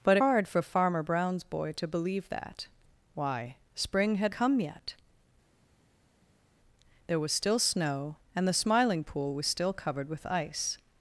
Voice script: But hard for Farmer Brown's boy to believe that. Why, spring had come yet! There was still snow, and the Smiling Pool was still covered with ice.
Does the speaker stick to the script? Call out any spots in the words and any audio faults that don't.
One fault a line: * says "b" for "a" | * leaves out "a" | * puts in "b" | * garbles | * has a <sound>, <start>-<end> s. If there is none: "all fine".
all fine